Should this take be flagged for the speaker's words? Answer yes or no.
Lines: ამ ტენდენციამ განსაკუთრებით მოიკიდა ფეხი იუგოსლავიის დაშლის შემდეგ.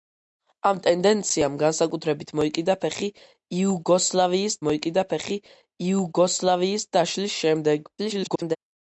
yes